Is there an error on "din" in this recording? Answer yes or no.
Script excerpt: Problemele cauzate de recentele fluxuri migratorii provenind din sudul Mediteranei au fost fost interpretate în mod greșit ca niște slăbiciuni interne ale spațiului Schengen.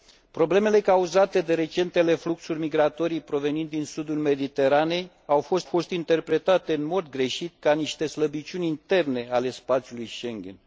no